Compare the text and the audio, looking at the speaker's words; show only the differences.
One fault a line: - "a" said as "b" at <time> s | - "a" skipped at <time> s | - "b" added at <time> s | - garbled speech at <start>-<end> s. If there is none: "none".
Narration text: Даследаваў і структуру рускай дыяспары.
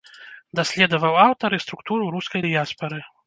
- "аўтар" added at 1.2 s